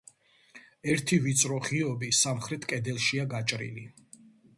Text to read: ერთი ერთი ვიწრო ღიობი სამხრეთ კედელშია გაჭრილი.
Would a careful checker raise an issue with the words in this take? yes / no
yes